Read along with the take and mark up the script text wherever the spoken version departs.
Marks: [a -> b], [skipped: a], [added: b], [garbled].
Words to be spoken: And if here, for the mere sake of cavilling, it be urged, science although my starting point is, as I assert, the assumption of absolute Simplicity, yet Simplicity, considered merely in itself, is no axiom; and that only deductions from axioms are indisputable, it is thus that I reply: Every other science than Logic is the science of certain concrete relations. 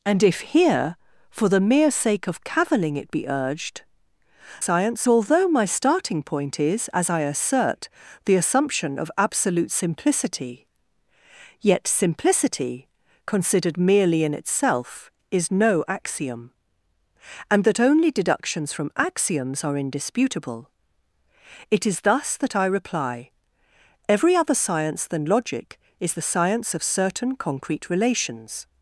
And if here, for the mere sake of cavilling, it be urged, science although my starting point is, as I assert, the assumption of absolute Simplicity, yet Simplicity, considered merely in itself, is no axiom; and that only deductions from axioms are indisputable, it is thus that I reply: Every other science than Logic is the science of certain concrete relations.